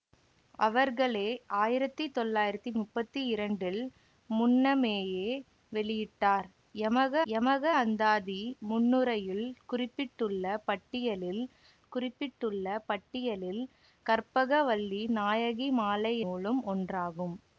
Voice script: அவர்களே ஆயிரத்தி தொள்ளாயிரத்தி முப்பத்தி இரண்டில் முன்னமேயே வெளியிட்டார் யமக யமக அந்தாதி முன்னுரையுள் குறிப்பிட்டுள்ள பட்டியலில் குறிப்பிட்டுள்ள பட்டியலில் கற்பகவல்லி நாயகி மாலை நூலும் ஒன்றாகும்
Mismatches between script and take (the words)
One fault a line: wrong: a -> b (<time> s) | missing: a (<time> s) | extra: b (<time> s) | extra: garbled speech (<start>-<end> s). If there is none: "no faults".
no faults